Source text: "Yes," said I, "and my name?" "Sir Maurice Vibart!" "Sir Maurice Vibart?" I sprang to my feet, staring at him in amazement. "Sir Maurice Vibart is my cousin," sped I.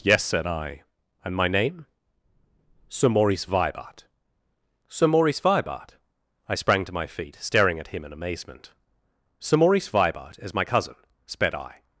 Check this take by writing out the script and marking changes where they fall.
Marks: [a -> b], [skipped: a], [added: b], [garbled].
"Yes," said I, "and my name?" "Sir Maurice Vibart!" "Sir Maurice Vibart?" I sprang to my feet, staring at him in amazement. "Sir Maurice Vibart is my cousin," sped I.